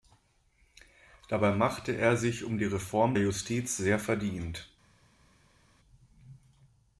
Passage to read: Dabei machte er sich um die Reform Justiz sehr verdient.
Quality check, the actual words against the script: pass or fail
pass